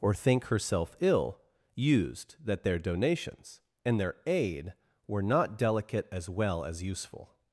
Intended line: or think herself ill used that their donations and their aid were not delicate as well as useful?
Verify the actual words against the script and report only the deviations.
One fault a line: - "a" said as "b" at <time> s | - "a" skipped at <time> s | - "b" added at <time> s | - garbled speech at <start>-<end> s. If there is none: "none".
none